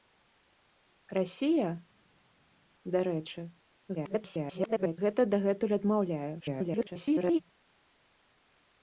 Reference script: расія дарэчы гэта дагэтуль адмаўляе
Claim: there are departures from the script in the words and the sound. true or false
true